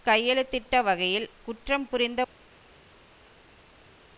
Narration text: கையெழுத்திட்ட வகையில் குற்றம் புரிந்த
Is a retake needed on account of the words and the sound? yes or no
no